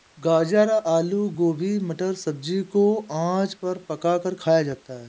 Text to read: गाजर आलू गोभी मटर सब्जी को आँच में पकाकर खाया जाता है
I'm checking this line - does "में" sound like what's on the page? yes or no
no